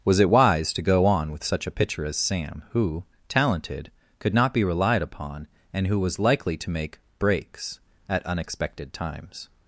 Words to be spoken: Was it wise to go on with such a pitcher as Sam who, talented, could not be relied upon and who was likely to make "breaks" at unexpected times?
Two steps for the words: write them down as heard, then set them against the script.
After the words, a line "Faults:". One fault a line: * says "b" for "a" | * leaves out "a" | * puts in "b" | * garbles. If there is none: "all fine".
Was it wise to go on with such a pitcher as Sam who, talented, could not be relied upon and who was likely to make "breaks" at unexpected times?
Faults:
all fine